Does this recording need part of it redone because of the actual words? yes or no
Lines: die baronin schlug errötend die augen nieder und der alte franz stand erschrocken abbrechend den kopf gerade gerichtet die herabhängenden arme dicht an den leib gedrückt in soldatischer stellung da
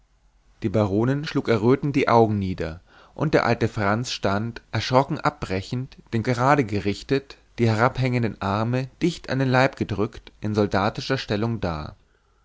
yes